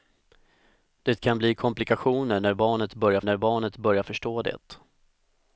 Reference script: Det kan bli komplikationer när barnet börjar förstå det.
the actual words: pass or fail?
fail